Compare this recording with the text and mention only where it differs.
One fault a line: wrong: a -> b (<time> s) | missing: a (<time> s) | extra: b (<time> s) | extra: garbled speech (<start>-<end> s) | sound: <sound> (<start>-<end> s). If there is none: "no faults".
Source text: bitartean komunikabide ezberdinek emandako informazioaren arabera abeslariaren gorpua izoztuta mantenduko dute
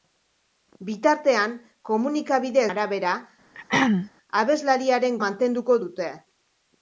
missing: ezberdinek emandako informazioaren (2.6 s)
sound: throat clearing (3.5-4.1 s)
missing: gorpua izoztuta (5.2 s)